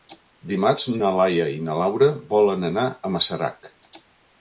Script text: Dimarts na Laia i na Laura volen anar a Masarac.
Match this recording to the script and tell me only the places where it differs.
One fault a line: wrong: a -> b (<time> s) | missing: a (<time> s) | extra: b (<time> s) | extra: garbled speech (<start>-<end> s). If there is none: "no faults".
no faults